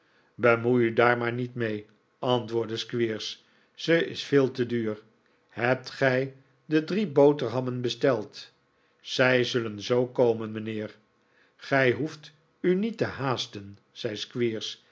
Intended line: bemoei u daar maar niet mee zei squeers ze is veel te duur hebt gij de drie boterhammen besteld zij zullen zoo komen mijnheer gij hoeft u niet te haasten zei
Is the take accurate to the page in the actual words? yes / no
no